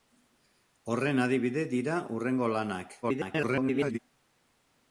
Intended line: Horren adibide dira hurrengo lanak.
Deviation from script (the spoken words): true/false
true